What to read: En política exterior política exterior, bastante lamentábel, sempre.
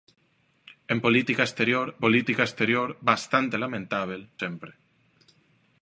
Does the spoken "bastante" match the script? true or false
true